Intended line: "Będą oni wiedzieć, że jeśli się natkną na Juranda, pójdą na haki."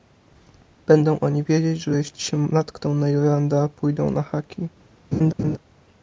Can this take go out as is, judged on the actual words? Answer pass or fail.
pass